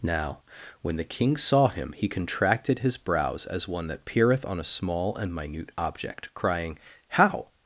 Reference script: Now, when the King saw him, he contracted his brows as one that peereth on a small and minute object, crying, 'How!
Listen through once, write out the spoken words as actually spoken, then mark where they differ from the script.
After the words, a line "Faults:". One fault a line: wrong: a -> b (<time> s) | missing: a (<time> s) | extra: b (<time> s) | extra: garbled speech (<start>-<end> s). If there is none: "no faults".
Now, when the King saw him, he contracted his brows as one that peereth on a small and minute object, crying, 'How!
Faults:
no faults